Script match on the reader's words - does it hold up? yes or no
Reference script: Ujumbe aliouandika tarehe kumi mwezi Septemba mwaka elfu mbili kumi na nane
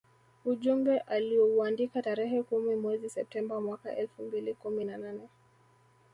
yes